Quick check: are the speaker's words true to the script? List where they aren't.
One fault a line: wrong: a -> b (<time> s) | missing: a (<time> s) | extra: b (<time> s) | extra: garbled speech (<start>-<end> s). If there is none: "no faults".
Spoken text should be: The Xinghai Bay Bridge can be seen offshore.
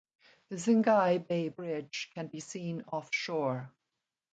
no faults